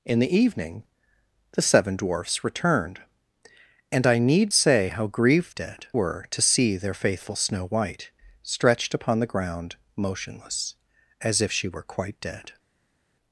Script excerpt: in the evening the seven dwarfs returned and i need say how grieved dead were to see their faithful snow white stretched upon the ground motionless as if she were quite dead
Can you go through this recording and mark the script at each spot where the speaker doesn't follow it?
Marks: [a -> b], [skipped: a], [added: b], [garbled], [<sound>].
in the evening the seven dwarfs returned and i need say how grieved dead were to see their faithful snow white stretched upon the ground motionless as if she were quite dead